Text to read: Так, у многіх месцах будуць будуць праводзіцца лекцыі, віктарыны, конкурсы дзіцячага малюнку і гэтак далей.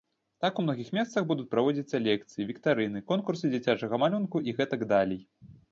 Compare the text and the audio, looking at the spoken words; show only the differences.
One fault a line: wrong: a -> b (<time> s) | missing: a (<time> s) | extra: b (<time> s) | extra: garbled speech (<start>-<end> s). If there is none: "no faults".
missing: будуць (1.5 s)